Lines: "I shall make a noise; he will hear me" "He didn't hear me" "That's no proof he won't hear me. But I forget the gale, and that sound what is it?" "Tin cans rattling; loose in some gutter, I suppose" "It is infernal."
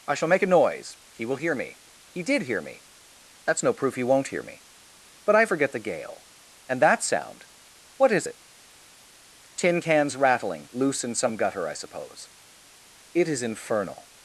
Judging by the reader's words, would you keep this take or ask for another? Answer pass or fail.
fail